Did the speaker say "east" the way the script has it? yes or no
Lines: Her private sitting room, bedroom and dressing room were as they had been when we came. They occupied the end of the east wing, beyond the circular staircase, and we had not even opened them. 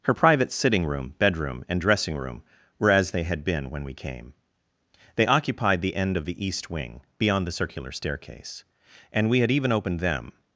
yes